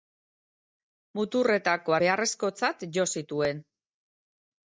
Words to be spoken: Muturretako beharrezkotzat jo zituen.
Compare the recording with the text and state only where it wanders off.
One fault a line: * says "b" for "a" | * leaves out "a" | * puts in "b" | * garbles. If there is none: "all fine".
all fine